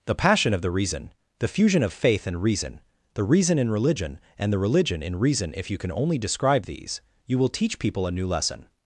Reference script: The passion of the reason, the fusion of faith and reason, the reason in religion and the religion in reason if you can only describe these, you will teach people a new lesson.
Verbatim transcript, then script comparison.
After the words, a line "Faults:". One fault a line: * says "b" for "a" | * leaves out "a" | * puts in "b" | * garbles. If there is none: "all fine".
The passion of the reason, the fusion of faith and reason, the reason in religion and the religion in reason if you can only describe these, you will teach people a new lesson.
Faults:
all fine